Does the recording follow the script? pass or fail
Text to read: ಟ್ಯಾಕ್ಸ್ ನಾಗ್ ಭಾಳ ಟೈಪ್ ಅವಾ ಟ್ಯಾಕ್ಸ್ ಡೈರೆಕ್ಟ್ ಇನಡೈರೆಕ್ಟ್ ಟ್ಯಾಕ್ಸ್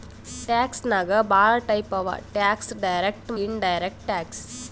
pass